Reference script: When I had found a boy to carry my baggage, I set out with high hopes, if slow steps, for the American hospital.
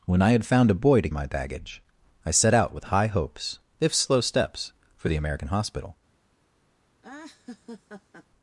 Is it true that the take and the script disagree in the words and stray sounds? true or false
true